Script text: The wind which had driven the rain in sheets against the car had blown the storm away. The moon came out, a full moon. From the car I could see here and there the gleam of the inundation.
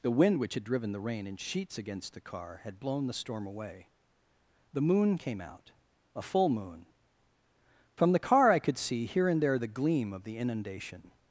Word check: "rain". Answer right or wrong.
right